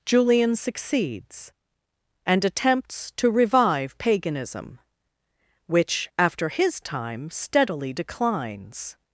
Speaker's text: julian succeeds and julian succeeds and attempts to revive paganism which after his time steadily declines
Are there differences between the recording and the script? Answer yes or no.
yes